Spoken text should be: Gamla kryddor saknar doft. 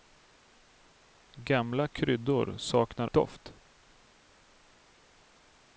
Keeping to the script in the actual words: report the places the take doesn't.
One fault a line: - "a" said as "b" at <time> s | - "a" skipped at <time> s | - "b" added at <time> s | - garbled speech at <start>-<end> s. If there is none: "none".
none